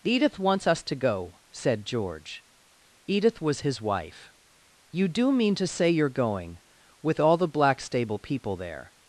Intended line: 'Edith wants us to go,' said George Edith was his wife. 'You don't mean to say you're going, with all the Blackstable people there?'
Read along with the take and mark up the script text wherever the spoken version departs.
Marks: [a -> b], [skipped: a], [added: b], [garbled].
'Edith wants us to go,' said George Edith was his wife. 'You [don't -> do] mean to say you're going, with all the Blackstable people there?'